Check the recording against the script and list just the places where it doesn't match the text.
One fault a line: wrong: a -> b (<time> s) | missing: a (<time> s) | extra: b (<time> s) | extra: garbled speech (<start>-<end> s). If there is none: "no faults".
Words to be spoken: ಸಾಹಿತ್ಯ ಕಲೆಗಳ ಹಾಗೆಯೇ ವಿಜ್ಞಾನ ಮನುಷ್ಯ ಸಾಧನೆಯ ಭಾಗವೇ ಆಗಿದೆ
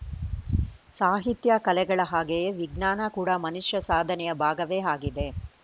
extra: ಕೂಡ (3.2 s)